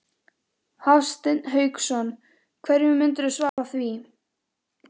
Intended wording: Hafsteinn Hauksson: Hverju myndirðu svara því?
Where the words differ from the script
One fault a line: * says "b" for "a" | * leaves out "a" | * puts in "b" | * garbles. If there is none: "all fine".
all fine